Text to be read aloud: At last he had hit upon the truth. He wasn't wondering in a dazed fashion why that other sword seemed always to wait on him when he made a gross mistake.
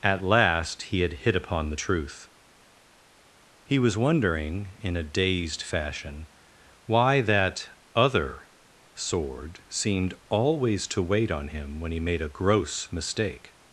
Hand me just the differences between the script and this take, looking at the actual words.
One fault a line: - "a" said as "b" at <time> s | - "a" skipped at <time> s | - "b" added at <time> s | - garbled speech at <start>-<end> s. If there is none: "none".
- "wasn't" said as "was" at 3.8 s